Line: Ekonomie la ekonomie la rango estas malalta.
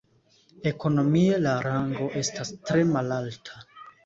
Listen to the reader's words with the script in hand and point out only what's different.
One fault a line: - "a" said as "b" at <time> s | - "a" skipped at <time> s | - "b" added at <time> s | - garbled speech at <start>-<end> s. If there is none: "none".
- "ekonomie la" skipped at 1.5 s
- "tre" added at 2.7 s